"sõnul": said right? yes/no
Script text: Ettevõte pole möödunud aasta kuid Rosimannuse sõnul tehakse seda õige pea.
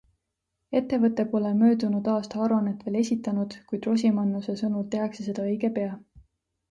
yes